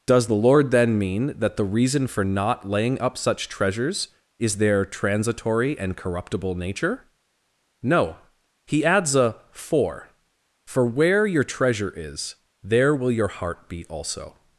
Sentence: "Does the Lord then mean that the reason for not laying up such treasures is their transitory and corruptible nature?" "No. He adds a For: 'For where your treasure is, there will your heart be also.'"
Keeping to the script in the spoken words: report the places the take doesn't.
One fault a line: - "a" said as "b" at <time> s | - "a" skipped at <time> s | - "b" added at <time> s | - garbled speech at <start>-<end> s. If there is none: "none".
none